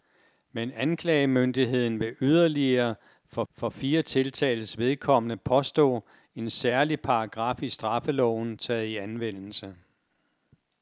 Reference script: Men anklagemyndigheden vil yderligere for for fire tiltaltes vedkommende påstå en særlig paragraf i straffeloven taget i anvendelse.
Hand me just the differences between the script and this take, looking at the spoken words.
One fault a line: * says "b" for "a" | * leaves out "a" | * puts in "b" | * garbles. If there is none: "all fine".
all fine